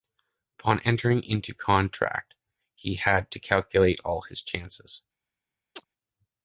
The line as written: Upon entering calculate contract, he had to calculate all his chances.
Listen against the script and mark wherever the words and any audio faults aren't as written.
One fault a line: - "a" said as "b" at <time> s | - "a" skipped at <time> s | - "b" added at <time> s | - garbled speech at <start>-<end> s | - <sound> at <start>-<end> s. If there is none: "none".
- "calculate" said as "into" at 1.2 s
- chirp at 5.8-5.9 s